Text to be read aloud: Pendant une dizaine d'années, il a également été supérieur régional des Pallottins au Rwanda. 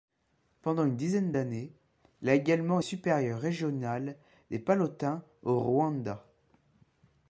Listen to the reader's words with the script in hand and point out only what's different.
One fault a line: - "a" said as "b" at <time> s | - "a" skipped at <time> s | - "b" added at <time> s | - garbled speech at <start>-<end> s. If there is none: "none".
- "été" skipped at 2.8 s